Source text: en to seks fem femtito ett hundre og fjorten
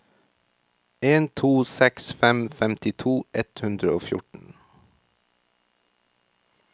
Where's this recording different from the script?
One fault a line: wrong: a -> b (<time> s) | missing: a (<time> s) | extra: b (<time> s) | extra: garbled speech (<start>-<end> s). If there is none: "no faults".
no faults